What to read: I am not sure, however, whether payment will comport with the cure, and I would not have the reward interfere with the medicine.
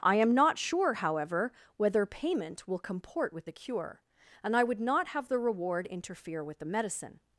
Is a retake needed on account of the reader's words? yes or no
no